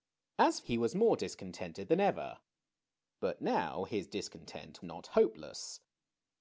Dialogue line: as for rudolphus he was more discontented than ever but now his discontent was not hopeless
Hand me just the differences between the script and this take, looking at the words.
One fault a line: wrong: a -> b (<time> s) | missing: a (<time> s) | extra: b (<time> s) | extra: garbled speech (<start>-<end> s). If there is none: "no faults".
missing: for rudolphus (0.6 s)
missing: was (4.8 s)